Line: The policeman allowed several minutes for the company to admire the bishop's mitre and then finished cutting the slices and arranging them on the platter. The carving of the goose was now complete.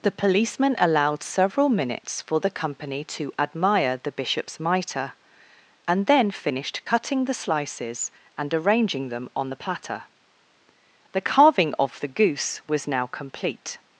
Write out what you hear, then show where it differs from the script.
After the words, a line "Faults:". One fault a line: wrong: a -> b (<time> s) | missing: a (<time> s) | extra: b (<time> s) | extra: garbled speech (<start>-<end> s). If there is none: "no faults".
The policeman allowed several minutes for the company to admire the bishop's mitre and then finished cutting the slices and arranging them on the platter. The carving of the goose was now complete.
Faults:
no faults